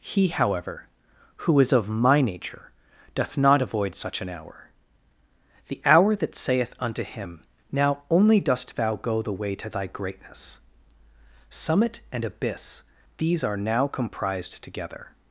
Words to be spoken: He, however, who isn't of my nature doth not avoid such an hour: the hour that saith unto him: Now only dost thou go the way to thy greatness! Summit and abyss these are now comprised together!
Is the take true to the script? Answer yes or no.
no